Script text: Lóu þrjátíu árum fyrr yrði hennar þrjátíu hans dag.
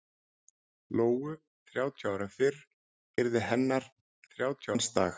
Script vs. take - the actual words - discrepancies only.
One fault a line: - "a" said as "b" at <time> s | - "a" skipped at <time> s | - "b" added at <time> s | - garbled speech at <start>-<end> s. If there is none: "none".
none